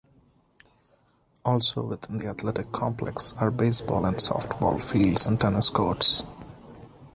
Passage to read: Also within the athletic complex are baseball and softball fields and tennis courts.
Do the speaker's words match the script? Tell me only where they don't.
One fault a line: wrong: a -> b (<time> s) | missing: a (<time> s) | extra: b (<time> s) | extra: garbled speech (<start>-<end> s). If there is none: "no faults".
no faults